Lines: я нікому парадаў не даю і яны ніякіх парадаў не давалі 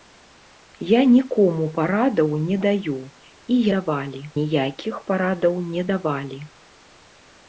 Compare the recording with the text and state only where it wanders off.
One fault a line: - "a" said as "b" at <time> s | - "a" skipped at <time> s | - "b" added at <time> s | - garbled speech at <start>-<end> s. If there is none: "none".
- "яны" said as "давалі" at 3.8 s